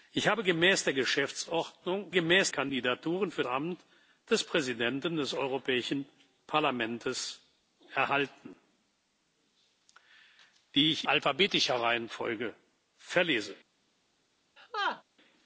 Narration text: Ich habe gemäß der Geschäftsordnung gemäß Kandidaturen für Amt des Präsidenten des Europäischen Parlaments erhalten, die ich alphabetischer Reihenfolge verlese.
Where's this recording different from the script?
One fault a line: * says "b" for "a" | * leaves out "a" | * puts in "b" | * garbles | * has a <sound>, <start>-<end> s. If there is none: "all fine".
* has a laugh, 14.6-15.0 s